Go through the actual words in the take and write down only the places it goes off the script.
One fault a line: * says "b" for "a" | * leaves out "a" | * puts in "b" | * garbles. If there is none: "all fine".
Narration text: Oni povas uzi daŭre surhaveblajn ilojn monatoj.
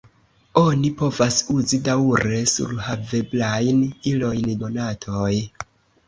all fine